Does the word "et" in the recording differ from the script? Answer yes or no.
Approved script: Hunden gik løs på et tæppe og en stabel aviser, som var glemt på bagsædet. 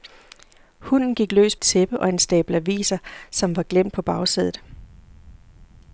yes